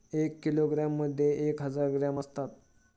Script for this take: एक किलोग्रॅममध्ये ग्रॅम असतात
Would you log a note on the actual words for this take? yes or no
yes